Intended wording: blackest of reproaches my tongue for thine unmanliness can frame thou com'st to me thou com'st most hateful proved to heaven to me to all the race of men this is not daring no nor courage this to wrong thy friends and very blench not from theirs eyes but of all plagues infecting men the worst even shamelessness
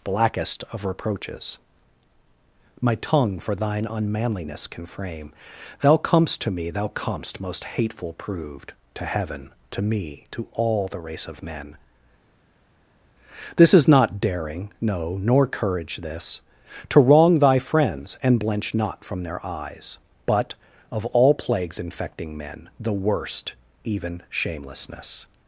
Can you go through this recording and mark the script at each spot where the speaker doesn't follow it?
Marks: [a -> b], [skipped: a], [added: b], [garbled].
blackest of reproaches my tongue for thine unmanliness can frame thou com'st to me thou com'st most hateful proved to heaven to me to all the race of men this is not daring no nor courage this to wrong thy friends and [skipped: very] blench not from [theirs -> their] eyes but of all plagues infecting men the worst even shamelessness